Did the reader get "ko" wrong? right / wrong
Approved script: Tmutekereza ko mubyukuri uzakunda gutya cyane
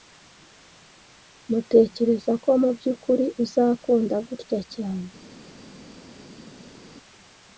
right